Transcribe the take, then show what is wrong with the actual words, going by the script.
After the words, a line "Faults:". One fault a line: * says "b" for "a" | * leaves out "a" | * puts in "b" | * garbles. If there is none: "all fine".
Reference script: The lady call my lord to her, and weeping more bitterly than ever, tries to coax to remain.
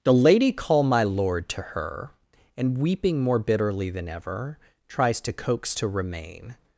The lady call my lord to her, and weeping more bitterly than ever, tries to coax to remain.
Faults:
all fine